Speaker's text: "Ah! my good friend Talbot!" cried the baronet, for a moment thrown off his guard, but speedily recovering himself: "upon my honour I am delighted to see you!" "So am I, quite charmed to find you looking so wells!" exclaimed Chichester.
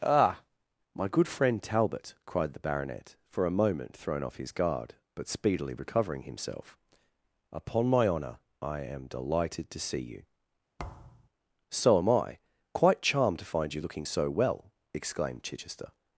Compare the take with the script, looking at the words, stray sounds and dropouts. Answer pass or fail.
fail